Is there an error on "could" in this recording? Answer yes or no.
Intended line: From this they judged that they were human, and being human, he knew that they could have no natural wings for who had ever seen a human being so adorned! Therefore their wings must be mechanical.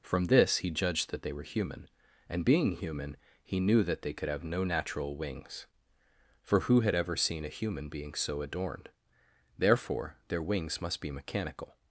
no